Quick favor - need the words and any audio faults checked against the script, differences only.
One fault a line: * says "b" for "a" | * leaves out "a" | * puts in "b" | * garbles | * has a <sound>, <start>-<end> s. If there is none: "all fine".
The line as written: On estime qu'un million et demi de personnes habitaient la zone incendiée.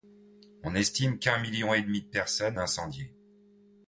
* leaves out "habitaient la zone"